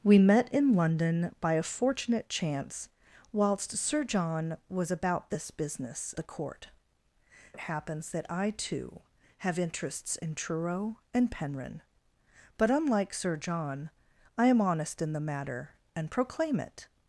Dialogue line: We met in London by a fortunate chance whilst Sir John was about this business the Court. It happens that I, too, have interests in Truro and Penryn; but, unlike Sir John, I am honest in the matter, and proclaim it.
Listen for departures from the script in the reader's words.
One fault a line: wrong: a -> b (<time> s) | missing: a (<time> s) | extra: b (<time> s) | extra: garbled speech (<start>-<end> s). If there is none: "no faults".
no faults